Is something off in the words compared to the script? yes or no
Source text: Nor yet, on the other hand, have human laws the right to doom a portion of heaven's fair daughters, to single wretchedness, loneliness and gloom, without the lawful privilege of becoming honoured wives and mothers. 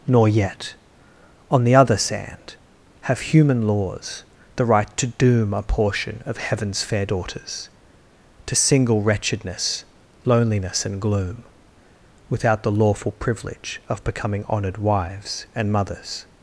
yes